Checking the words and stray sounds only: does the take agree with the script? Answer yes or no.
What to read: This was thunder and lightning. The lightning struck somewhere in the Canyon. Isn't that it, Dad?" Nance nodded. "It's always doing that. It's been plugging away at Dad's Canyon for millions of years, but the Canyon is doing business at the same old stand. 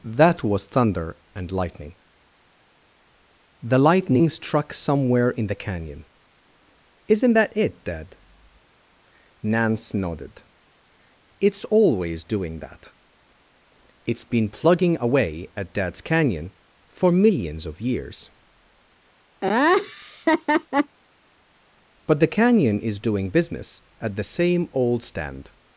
no